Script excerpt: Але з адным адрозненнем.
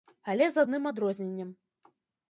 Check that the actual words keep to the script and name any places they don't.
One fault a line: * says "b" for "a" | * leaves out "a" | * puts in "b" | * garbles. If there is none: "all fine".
all fine